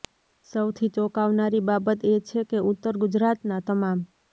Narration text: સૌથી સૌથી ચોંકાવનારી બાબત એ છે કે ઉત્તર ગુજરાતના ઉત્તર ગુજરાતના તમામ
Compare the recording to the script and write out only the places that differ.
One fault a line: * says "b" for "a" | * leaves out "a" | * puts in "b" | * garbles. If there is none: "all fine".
* leaves out "સૌથી"
* leaves out "ઉત્તર ગુજરાતના"